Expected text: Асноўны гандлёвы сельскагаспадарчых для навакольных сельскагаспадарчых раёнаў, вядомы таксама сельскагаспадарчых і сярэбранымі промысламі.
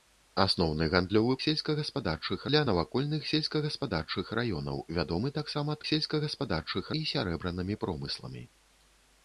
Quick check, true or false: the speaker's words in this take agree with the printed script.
true